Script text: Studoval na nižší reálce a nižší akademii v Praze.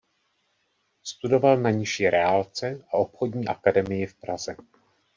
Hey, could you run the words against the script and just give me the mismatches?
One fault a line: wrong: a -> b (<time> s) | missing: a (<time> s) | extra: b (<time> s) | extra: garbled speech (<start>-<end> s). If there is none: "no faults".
wrong: nižší -> obchodní (2.9 s)